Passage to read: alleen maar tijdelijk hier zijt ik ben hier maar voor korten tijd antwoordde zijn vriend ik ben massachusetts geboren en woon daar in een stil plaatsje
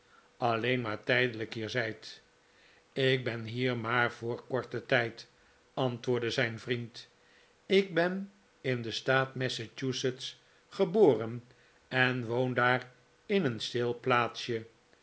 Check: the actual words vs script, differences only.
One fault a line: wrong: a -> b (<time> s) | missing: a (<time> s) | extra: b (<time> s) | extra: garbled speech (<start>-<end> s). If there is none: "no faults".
extra: in den staat (8.6 s)